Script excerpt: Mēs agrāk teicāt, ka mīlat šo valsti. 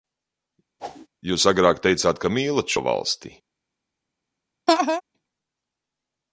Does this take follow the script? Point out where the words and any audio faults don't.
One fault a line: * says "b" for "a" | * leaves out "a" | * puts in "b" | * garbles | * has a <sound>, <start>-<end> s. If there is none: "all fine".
* has a whoosh, 0.8-1.1 s
* says "Jūs" for "Mēs"
* has a laugh, 4.7-5.0 s